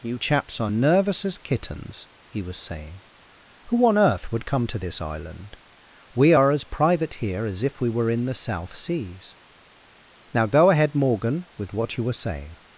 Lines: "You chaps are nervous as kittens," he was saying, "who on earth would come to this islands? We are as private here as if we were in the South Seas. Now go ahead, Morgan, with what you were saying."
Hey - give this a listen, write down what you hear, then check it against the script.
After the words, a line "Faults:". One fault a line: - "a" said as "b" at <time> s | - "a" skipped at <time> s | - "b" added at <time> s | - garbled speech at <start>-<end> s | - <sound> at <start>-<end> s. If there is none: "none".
"You chaps are nervous as kittens," he was saying, "who on earth would come to this island? We are as private here as if we were in the South Seas. Now go ahead, Morgan, with what you were saying."
Faults:
- "islands" said as "island" at 5.0 s